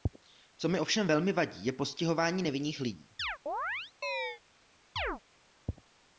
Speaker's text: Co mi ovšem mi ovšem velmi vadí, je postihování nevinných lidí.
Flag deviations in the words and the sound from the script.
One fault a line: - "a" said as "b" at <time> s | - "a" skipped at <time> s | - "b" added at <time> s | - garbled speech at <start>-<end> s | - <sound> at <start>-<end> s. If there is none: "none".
- "mi ovšem" skipped at 1.1 s
- chirp at 3.2-4.4 s
- chirp at 5.0-5.2 s